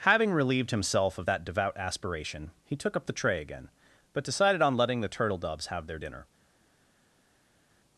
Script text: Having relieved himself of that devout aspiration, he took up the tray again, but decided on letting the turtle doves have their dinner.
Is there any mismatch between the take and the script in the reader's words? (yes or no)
no